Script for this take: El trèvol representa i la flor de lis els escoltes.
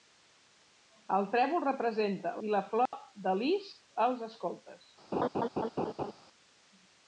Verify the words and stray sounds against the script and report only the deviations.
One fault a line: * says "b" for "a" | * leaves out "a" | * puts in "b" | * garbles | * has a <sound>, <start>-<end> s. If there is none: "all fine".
* has a dropout, 2.9-2.9 s
* has a laugh, 5.1-6.1 s